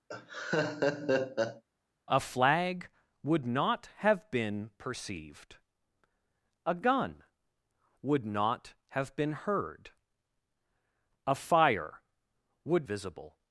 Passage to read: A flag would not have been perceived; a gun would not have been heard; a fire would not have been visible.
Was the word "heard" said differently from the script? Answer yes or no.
no